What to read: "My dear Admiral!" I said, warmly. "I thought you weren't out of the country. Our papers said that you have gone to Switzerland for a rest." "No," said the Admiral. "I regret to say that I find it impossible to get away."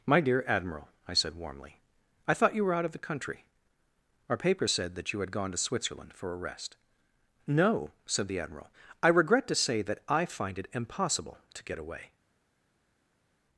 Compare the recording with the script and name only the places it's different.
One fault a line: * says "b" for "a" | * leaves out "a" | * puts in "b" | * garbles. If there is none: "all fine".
* says "were" for "weren't"
* says "had" for "have"